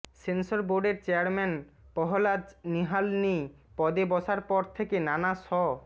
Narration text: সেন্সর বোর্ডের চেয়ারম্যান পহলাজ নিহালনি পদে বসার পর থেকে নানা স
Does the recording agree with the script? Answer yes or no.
yes